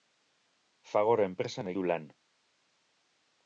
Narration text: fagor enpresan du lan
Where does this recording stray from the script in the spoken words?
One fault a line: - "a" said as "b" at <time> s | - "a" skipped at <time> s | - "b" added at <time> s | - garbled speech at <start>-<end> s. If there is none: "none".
none